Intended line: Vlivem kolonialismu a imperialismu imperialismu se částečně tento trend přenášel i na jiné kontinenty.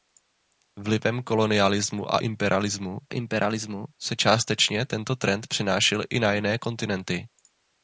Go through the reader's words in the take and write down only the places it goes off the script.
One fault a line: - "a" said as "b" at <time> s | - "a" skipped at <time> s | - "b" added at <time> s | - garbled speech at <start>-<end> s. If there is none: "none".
none